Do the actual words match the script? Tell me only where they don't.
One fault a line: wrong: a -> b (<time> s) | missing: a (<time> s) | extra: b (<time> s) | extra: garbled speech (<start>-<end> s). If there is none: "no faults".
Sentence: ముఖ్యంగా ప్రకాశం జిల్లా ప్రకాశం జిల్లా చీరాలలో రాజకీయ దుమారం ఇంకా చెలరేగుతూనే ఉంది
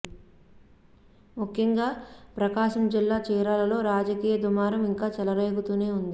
missing: ప్రకాశం జిల్లా (3.2 s)